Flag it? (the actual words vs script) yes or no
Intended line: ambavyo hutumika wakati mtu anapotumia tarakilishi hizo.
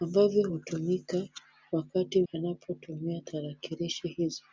yes